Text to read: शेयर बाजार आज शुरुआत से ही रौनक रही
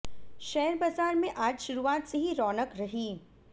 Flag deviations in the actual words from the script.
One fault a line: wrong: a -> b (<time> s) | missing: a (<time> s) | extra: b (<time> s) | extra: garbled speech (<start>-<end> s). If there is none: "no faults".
extra: में (1.1 s)